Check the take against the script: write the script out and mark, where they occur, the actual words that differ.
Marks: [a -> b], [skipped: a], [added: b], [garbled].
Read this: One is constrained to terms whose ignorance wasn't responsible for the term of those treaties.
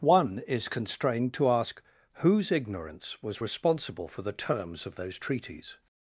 One is constrained to [terms -> ask] whose ignorance [wasn't -> was] responsible for the [term -> terms] of those treaties.